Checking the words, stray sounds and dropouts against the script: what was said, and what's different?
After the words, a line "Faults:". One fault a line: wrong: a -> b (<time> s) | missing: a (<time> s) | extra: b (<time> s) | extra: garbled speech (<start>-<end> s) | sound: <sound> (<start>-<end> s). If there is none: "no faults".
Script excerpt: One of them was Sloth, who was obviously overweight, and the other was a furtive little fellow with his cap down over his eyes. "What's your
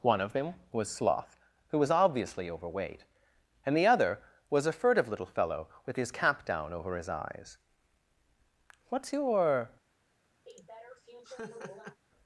One of them was Sloth, who was obviously overweight, and the other was a furtive little fellow with his cap down over his eyes. "What's your
Faults:
sound: laugh (10.5-12.0 s)